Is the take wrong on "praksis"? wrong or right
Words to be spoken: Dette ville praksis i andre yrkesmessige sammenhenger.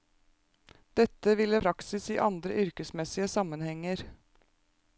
right